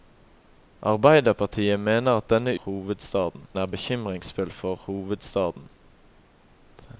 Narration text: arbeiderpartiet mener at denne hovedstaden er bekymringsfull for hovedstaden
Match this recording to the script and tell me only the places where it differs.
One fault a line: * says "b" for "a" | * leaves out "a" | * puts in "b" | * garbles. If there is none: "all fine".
all fine